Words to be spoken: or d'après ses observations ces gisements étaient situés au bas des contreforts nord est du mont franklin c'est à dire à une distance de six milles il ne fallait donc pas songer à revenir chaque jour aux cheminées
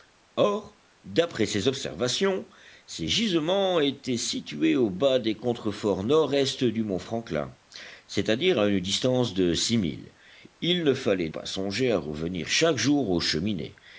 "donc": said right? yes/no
no